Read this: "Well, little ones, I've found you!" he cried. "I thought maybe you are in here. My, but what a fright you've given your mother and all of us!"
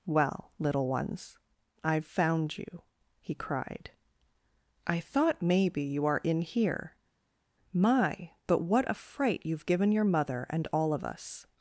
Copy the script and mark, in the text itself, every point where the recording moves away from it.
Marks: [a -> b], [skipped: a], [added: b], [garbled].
"Well, little ones, I've found you!" he cried. "I thought maybe you are in here. My, but what a fright you've given your mother and all of us!"